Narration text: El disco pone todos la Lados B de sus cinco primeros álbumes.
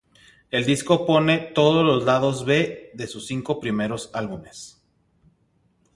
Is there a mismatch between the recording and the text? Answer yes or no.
yes